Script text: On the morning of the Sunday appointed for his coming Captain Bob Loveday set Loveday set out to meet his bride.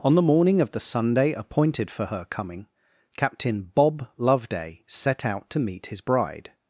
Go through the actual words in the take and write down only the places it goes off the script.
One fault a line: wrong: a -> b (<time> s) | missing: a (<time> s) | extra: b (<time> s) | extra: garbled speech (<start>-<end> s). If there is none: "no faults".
wrong: his -> her (2.1 s)
missing: Loveday set (5.3 s)